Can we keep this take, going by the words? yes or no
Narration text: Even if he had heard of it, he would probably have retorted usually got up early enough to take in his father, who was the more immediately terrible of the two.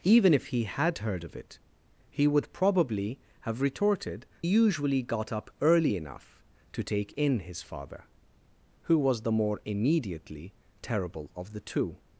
yes